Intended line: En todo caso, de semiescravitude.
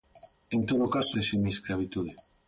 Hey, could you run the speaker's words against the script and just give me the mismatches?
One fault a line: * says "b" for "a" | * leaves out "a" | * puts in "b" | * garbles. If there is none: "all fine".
all fine